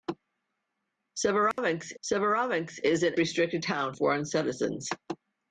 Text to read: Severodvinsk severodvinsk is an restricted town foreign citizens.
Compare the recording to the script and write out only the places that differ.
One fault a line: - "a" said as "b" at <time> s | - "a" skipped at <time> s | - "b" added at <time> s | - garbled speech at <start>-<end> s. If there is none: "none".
none